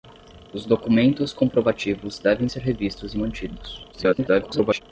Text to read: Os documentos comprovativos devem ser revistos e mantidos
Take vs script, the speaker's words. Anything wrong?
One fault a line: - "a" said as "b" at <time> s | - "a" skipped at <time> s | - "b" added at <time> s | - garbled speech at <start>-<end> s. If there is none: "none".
- garbled speech at 3.9-4.8 s